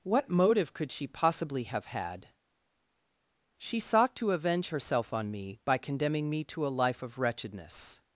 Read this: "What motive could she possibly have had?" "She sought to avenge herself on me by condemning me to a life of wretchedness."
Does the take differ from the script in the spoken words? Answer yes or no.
no